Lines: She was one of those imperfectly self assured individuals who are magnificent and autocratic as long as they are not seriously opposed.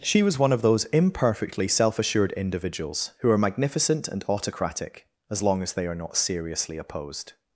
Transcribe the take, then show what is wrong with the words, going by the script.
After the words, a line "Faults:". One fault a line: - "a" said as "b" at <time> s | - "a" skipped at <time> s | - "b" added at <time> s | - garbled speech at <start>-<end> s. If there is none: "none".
She was one of those imperfectly self assured individuals who are magnificent and autocratic as long as they are not seriously opposed.
Faults:
none